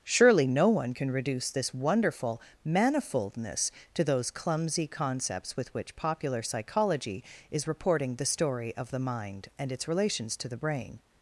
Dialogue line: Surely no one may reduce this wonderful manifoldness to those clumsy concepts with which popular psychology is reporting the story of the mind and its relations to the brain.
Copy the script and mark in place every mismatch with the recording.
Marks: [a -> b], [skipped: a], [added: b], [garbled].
Surely no one [may -> can] reduce this wonderful manifoldness to those clumsy concepts with which popular psychology is reporting the story of the mind and its relations to the brain.